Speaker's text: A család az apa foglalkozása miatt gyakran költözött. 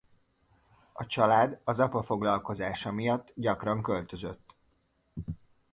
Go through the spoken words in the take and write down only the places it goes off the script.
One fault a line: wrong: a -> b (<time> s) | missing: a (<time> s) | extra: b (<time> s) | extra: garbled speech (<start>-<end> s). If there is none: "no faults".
no faults